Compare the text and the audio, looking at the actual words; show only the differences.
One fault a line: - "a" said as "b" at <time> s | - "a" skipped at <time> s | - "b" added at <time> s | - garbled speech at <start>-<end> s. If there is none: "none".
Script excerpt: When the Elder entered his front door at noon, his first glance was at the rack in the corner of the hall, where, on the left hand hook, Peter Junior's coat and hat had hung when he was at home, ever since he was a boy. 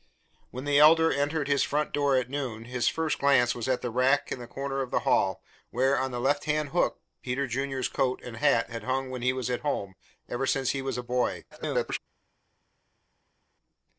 - garbled speech at 11.5-12.0 s